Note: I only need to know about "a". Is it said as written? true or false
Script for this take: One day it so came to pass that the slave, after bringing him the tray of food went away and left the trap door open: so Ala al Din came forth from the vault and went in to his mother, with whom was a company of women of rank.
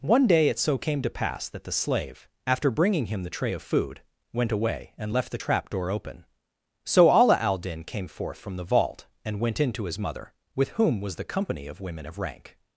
false